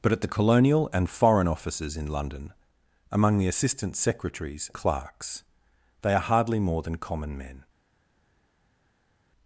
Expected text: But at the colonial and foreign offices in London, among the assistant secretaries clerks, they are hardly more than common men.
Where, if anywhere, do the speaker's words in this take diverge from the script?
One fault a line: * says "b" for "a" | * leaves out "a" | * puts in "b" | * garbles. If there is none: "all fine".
all fine